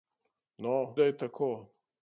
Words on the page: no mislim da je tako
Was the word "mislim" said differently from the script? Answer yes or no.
yes